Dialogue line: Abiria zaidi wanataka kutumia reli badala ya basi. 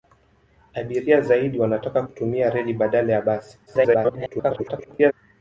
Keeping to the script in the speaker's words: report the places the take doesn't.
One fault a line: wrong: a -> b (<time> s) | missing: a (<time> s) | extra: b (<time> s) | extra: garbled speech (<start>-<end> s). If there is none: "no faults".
extra: garbled speech (3.7-5.1 s)